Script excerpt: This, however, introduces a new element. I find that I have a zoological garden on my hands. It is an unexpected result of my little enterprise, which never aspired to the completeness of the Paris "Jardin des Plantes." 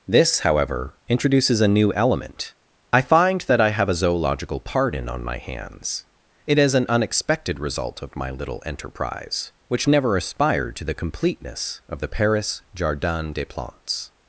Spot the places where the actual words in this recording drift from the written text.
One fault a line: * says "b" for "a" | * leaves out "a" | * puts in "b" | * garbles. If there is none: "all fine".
* says "pardon" for "garden"